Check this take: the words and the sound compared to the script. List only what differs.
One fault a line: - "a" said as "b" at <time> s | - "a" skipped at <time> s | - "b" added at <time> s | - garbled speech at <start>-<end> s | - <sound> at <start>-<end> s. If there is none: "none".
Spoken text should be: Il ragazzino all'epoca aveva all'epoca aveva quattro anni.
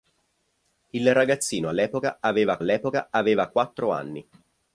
none